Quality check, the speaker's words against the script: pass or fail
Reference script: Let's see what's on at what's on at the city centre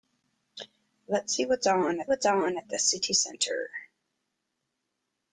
pass